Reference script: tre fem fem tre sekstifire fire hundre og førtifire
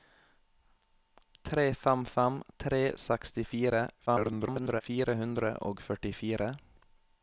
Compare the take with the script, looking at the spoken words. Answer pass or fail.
fail